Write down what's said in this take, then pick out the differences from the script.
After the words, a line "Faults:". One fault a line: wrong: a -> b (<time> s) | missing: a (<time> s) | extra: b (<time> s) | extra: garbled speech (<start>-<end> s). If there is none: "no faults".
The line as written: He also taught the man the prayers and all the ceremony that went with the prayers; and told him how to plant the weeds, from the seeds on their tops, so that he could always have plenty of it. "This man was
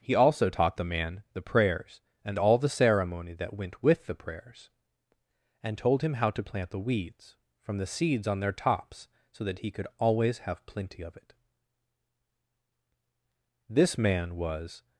He also taught the man the prayers and all the ceremony that went with the prayers; and told him how to plant the weeds, from the seeds on their tops, so that he could always have plenty of it. "This man was
Faults:
no faults